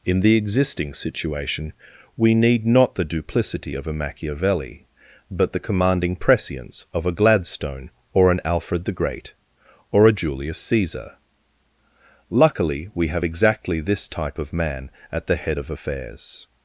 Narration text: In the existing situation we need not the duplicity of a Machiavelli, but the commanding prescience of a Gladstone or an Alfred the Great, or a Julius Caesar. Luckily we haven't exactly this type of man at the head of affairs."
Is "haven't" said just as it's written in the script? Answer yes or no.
no